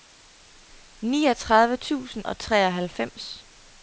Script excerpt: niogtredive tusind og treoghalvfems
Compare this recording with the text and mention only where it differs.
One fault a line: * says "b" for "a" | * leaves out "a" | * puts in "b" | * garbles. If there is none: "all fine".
all fine